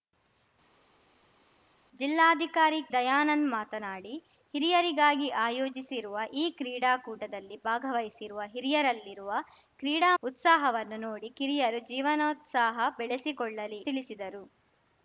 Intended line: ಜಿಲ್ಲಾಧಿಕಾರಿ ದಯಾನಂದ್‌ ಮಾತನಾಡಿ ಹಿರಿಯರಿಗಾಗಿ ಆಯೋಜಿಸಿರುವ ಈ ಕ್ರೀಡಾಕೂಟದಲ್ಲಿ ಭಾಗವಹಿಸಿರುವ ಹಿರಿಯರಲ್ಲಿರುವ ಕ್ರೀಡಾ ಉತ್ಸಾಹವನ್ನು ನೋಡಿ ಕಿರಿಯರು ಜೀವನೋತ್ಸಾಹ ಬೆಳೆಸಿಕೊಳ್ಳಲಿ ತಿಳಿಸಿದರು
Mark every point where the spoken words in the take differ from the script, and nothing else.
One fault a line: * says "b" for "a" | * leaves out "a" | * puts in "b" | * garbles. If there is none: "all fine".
all fine